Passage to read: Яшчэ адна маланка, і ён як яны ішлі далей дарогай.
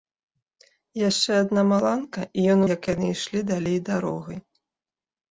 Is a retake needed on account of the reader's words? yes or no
no